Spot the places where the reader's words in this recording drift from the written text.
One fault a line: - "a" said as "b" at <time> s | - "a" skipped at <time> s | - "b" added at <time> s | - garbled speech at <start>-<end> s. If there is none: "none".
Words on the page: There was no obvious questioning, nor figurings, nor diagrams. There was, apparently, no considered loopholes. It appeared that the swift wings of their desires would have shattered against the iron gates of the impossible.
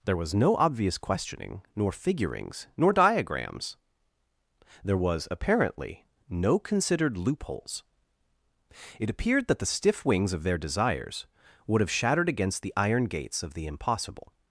- "swift" said as "stiff" at 9.7 s